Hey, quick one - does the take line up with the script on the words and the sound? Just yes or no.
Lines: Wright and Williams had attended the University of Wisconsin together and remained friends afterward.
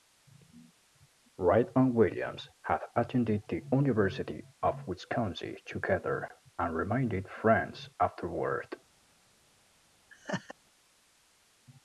no